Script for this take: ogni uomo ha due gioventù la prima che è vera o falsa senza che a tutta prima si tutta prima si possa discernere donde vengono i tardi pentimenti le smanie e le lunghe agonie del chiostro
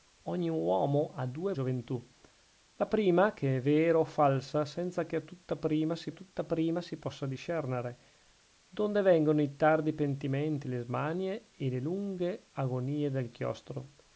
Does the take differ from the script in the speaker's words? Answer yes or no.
no